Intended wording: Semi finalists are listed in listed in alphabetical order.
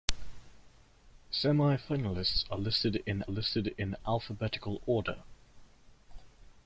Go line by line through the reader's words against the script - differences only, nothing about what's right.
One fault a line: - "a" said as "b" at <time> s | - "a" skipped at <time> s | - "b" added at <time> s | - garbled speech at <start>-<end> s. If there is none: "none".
none